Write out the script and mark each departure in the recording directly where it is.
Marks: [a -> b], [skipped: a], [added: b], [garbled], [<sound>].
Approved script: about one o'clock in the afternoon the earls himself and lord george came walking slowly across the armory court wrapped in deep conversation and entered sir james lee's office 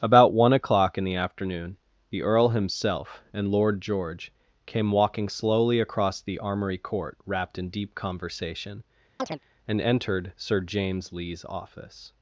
about one o'clock in the afternoon the [earls -> earl] himself and lord george came walking slowly across the armory court wrapped in deep conversation [chirp] and entered sir james lee's office